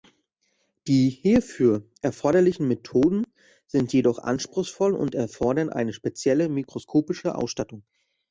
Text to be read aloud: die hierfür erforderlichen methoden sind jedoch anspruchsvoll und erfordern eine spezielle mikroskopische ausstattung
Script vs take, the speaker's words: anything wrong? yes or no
no